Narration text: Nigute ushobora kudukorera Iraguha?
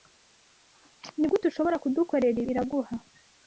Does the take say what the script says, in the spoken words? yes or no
yes